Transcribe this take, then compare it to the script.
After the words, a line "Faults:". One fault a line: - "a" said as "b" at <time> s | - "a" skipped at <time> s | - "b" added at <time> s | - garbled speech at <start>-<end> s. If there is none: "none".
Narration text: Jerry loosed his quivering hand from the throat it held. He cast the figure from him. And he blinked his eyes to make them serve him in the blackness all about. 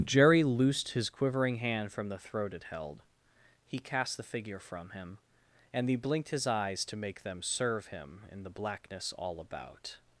Jerry loosed his quivering hand from the throat it held. He cast the figure from him. And he blinked his eyes to make them serve him in the blackness all about.
Faults:
none